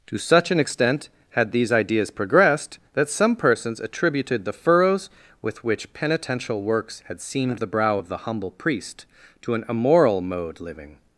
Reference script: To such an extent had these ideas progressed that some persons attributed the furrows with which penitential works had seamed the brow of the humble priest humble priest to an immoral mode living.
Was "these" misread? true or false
false